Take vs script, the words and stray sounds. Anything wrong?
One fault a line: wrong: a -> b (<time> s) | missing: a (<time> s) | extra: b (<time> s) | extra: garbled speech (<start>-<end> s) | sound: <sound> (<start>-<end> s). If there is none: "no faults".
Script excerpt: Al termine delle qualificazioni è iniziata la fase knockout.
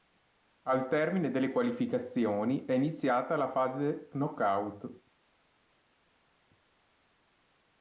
no faults